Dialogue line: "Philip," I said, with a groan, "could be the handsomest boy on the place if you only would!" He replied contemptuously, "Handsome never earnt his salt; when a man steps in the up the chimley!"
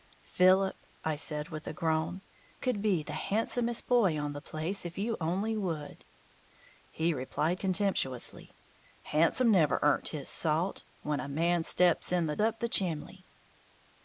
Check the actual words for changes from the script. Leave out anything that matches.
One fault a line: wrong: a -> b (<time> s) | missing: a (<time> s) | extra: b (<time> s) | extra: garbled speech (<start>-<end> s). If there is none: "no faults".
no faults